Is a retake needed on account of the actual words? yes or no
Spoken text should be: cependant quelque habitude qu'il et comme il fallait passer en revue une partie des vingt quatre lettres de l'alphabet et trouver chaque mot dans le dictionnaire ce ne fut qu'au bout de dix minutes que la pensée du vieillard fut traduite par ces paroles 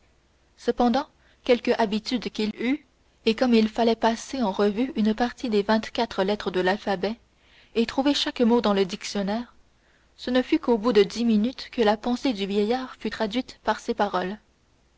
yes